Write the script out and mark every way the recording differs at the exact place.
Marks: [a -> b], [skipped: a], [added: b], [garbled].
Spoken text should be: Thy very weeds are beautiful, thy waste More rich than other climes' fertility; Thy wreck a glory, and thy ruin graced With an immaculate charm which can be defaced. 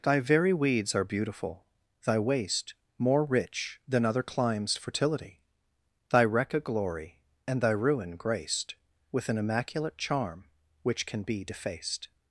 Thy very weeds are beautiful, thy waste More rich than other climes' fertility; Thy wreck a glory, and thy ruin graced With an immaculate charm which can be defaced.